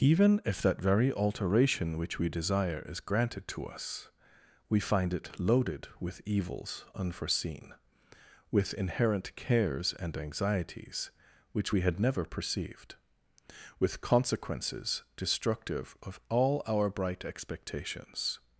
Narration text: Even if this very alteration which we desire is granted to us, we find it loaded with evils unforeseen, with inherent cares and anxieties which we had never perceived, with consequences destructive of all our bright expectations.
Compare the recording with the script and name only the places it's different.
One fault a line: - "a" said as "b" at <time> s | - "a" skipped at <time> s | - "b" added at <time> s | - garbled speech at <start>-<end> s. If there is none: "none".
- "this" said as "that" at 0.6 s